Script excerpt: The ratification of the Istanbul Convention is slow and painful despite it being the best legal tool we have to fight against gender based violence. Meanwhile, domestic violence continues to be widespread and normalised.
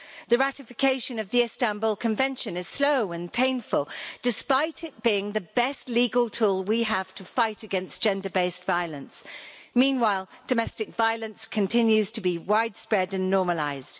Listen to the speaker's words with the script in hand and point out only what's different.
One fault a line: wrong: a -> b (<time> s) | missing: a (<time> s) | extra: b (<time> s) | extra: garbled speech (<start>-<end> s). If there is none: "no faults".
no faults